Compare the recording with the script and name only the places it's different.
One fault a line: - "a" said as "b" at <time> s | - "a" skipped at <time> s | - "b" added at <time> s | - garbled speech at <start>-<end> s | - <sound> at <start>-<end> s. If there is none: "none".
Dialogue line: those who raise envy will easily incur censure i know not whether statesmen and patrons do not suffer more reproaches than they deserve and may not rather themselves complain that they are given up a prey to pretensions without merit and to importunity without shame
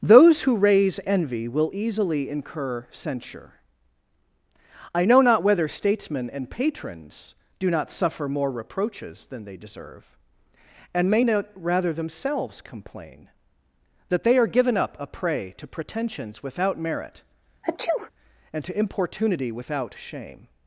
- sneeze at 17.6-18.1 s